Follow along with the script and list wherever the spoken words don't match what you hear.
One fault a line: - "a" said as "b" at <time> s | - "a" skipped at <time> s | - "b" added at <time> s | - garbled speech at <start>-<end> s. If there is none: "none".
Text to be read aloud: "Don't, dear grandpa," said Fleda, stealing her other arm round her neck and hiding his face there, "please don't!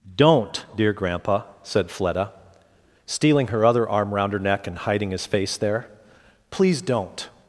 none